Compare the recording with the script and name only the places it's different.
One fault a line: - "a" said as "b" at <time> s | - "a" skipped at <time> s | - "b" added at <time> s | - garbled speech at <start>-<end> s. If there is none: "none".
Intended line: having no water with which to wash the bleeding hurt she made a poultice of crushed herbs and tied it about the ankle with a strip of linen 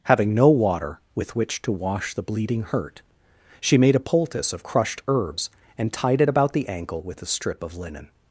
none